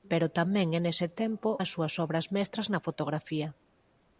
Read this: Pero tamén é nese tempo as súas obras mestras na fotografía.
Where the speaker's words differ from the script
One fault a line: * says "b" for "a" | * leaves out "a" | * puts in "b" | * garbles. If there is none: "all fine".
all fine